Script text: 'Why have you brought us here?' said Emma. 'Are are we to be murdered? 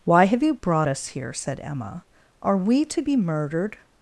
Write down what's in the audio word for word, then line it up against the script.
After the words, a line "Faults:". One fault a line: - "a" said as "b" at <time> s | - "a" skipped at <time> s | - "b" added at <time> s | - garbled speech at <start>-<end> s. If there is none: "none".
'Why have you brought us here?' said Emma. 'Are we to be murdered?
Faults:
- "are" skipped at 2.6 s